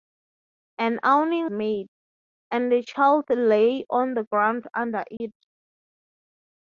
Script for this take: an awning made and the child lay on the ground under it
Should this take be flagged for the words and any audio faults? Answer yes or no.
yes